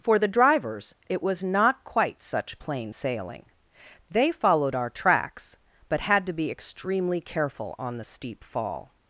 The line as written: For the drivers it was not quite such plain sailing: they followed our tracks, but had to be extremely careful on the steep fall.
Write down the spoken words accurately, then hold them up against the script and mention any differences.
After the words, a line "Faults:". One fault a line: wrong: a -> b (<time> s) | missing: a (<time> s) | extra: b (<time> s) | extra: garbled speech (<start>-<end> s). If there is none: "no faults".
For the drivers it was not quite such plain sailing: they followed our tracks, but had to be extremely careful on the steep fall.
Faults:
no faults